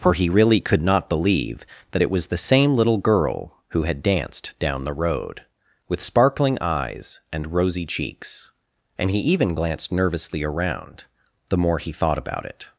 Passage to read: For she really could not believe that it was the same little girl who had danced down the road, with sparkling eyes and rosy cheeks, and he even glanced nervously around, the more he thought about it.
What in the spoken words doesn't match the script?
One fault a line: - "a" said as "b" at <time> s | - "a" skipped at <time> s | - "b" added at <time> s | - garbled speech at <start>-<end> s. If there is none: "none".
- "she" said as "he" at 0.1 s